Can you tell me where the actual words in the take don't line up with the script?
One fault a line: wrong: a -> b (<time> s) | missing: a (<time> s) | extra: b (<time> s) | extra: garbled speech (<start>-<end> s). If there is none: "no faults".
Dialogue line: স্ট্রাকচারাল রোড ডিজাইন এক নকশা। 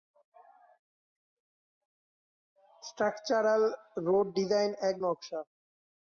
no faults